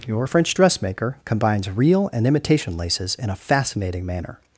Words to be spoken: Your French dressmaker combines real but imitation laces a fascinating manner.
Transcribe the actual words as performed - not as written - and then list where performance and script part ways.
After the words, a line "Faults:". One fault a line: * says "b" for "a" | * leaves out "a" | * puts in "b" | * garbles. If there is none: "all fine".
Your French dressmaker combines real and imitation laces in a fascinating manner.
Faults:
* says "and" for "but"
* puts in "in"